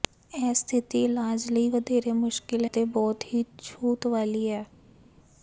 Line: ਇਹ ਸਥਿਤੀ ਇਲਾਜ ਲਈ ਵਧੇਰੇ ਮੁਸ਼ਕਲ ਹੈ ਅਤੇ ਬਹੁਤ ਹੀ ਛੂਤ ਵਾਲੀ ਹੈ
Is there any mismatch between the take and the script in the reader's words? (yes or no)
yes